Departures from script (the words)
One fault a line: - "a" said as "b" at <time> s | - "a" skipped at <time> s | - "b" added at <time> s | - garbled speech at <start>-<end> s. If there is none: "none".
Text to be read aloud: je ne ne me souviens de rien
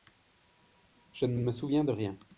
none